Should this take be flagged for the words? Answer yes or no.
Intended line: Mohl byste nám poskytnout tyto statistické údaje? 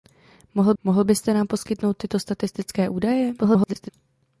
yes